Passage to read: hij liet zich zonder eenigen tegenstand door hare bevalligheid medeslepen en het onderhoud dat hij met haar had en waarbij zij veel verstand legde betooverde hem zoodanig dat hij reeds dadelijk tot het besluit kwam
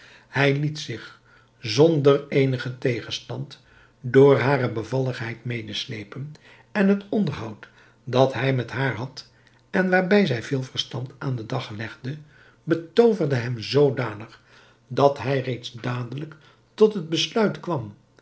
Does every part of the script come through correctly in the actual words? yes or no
no